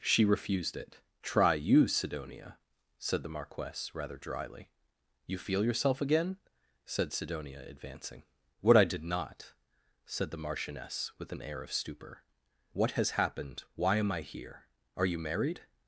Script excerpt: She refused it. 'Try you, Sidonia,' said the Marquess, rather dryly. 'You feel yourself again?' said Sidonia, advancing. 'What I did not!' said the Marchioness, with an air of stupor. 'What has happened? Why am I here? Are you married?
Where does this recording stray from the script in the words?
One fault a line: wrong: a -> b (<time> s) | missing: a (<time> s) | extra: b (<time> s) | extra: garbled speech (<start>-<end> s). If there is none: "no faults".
no faults